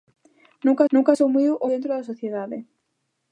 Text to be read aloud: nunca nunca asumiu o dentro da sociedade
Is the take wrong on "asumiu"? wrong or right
right